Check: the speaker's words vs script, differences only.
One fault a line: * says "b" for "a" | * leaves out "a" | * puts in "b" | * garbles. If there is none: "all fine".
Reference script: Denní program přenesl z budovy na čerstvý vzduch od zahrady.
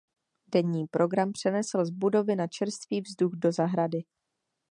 * says "do" for "od"